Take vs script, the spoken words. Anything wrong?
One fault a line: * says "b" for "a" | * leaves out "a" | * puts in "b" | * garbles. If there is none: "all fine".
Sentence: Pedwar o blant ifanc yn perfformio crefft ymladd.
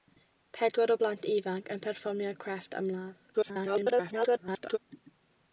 * garbles